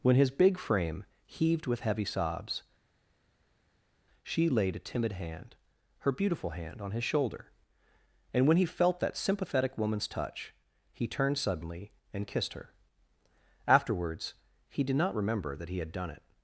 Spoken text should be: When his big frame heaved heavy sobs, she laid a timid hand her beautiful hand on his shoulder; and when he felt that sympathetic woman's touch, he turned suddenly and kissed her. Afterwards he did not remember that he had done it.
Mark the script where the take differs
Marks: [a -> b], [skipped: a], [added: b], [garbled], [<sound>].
When his big frame heaved [added: with] heavy sobs, she laid a timid hand her beautiful hand on his shoulder; and when he felt that sympathetic woman's touch, he turned suddenly and kissed her. Afterwards he did not remember that he had done it.